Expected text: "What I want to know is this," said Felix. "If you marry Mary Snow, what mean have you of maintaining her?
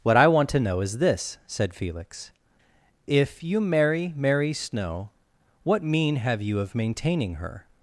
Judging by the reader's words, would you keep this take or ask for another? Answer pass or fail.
pass